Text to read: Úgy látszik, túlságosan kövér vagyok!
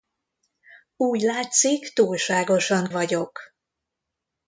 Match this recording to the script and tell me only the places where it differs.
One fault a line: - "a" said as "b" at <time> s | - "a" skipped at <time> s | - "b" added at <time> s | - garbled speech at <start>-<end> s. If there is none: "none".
- "kövér" skipped at 2.9 s